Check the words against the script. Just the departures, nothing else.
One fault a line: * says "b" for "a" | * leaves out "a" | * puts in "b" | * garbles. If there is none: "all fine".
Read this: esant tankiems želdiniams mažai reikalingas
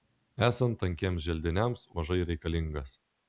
all fine